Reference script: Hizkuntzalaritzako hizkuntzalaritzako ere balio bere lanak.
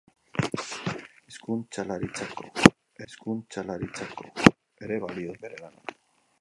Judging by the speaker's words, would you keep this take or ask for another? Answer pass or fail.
pass